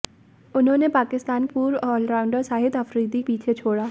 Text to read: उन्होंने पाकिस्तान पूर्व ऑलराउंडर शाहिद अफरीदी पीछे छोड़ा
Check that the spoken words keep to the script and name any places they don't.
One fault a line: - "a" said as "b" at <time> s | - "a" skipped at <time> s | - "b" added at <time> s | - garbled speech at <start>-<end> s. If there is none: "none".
none